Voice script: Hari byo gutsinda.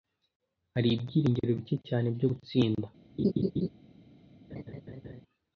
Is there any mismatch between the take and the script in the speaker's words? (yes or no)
yes